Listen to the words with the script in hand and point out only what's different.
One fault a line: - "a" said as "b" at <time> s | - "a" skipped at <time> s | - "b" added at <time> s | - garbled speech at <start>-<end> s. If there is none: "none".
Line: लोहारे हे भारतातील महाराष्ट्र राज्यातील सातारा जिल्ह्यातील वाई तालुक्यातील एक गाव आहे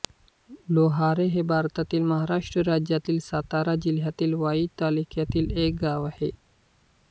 none